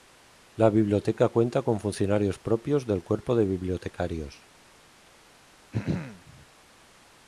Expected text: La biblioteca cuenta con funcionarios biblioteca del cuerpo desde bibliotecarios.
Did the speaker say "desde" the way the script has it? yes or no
no